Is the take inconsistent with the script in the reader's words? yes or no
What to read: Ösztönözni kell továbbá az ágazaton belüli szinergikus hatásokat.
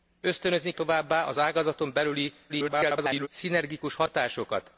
yes